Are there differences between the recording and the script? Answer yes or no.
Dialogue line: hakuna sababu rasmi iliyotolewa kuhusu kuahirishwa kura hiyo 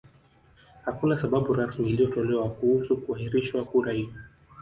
no